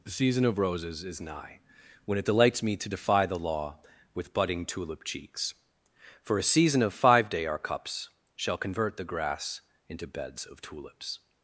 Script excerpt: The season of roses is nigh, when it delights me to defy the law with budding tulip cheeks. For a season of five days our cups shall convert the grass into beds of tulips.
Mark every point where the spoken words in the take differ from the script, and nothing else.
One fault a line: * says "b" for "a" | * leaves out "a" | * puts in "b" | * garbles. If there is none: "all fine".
* says "day" for "days"